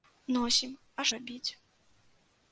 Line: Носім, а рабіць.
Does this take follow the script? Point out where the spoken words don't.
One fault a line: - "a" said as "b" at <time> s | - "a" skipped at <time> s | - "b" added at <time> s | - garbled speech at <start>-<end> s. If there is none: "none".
none